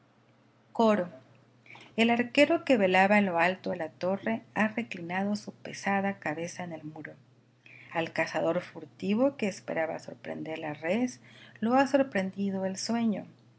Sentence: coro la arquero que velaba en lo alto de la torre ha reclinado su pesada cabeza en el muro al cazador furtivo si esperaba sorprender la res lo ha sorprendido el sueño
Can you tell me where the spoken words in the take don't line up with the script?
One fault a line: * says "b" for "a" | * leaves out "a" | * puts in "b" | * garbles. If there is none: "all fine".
* says "el" for "la"
* says "que" for "si"